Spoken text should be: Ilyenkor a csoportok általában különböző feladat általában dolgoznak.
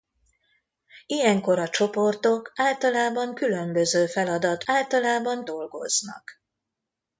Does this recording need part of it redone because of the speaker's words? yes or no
no